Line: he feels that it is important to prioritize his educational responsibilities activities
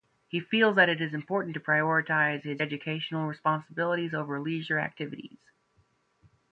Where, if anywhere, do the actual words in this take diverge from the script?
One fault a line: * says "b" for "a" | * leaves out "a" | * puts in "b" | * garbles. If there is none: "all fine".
* puts in "over leisure"